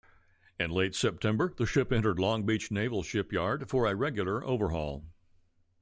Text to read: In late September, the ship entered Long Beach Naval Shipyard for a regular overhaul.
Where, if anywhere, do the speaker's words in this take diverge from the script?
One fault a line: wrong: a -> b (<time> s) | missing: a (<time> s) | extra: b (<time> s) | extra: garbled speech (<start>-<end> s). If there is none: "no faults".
no faults